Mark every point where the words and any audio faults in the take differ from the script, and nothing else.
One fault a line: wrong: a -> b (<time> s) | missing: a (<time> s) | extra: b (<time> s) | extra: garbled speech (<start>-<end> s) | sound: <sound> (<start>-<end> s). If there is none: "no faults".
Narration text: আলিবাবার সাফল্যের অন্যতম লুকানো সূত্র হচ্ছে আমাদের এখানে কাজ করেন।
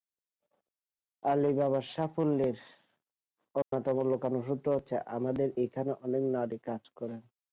sound: dropout (3.6-3.7 s)
extra: অনেক নারী (6.0 s)